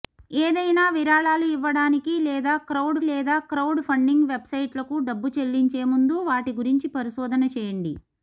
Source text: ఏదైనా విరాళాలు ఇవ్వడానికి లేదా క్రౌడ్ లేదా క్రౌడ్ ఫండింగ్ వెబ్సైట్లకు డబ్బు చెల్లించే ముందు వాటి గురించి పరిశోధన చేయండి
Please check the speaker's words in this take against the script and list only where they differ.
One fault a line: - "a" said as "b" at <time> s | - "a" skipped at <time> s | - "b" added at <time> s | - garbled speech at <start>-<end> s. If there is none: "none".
none